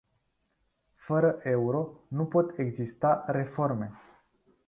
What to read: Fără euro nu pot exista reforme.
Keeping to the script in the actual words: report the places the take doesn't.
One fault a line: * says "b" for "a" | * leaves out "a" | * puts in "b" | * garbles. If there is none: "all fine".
all fine